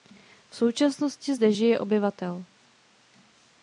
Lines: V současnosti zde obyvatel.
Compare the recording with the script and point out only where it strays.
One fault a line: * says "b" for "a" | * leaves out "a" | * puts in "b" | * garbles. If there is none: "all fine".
* puts in "žije"